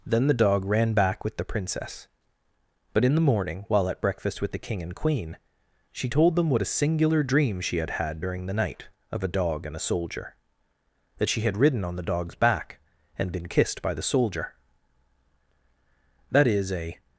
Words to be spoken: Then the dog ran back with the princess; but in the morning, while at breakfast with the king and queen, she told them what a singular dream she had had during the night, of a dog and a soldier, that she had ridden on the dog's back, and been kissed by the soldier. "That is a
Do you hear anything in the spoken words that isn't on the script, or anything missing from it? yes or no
no